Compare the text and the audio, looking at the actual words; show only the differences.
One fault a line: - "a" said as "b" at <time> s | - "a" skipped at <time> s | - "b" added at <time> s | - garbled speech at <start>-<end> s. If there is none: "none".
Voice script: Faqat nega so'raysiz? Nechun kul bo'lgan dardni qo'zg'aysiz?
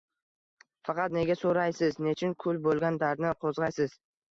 none